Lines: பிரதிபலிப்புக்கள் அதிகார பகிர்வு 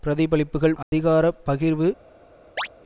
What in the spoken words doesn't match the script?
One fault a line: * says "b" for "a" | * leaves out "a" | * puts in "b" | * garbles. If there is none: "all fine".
all fine